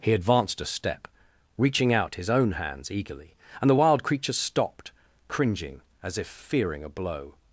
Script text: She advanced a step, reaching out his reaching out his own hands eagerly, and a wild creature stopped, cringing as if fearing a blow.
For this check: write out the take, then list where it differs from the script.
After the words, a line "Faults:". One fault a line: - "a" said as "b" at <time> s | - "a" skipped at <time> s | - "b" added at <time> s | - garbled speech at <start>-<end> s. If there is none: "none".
He advanced a step, reaching out his own hands eagerly, and the wild creature stopped, cringing as if fearing a blow.
Faults:
- "She" said as "He" at 0.0 s
- "reaching out his" skipped at 2.3 s
- "a" said as "the" at 3.7 s